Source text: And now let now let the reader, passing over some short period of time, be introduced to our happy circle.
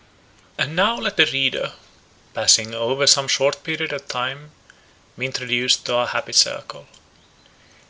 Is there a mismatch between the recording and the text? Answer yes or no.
yes